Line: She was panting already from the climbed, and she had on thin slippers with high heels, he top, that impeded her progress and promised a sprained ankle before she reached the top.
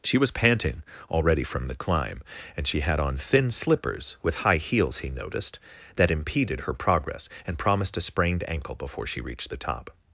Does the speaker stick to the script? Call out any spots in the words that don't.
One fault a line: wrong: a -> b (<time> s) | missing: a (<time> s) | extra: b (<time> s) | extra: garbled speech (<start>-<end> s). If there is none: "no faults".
wrong: climbed -> climb (1.8 s)
wrong: top -> noticed (5.1 s)